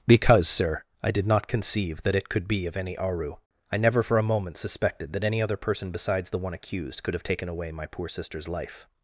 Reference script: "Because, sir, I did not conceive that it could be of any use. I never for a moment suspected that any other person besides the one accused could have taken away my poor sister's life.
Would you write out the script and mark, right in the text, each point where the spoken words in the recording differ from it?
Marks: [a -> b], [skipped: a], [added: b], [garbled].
"Because, sir, I did not conceive that it could be of any [use. -> aru] I never for a moment suspected that any other person besides the one accused could have taken away my poor sister's life.